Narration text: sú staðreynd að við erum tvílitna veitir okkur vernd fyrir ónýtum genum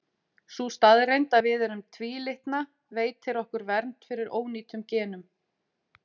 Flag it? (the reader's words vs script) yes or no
no